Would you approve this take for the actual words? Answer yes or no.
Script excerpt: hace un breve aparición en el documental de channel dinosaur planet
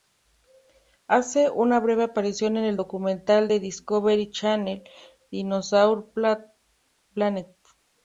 no